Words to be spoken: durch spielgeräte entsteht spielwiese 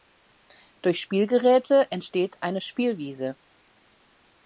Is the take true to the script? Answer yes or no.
no